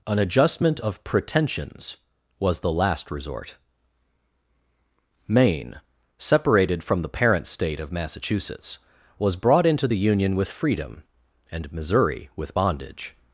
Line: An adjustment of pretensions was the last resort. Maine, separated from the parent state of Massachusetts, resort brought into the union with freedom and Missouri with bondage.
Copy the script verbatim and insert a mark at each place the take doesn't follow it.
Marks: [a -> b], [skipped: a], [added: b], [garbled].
An adjustment of pretensions was the last resort. Maine, separated from the parent state of Massachusetts, [resort -> was] brought into the union with freedom and Missouri with bondage.